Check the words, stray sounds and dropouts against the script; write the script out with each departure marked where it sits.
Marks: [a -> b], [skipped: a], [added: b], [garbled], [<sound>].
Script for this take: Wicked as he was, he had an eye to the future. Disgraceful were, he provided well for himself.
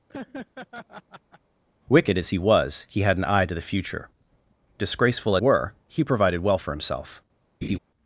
[laugh] Wicked as he was, he had an eye to the future. Disgraceful were, he provided well for himself. [laugh]